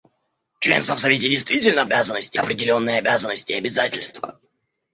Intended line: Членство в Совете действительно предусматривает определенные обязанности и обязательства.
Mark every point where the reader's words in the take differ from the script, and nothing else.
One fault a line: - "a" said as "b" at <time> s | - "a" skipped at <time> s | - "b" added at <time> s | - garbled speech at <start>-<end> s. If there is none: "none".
- "предусматривает" said as "обязанности" at 1.8 s